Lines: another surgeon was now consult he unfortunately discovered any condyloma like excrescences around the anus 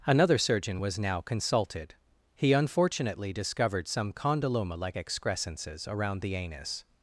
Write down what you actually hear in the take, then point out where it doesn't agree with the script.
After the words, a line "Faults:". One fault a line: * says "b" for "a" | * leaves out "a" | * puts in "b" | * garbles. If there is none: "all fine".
another surgeon was now consulted he unfortunately discovered some condyloma like excrescences around the anus
Faults:
* says "consulted" for "consult"
* says "some" for "any"